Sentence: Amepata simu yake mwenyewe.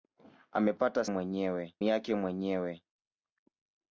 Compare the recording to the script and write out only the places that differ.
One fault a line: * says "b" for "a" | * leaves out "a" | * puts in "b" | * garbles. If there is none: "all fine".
* says "mwenyewe" for "simu"